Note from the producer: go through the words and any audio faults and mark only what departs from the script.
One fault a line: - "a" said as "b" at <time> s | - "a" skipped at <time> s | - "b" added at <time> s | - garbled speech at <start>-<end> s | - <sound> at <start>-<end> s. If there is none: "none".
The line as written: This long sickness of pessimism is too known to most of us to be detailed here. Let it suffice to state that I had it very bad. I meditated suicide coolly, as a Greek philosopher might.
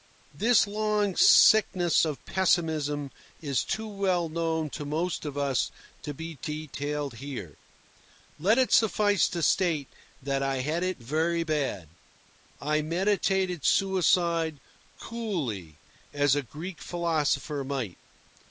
- "well" added at 3.9 s